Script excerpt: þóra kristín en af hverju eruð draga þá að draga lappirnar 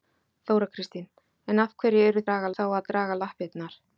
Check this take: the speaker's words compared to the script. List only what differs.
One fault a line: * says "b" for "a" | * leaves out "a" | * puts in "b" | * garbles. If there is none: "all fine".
all fine